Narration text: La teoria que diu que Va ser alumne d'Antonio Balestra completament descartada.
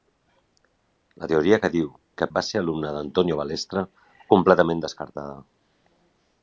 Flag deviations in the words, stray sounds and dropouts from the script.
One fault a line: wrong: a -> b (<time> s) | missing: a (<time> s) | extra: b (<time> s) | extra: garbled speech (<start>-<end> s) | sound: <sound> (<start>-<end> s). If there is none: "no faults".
no faults